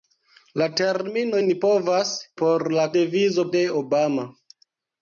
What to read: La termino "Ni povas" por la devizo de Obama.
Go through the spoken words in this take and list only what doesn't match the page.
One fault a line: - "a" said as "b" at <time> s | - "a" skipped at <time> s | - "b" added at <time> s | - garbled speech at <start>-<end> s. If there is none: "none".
none